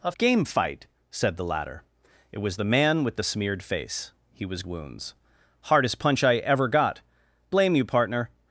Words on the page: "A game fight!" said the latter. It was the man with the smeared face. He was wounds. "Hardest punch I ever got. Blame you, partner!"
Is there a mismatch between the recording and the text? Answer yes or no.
no